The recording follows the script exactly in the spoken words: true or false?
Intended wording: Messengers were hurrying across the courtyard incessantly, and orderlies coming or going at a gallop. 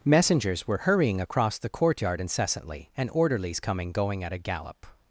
false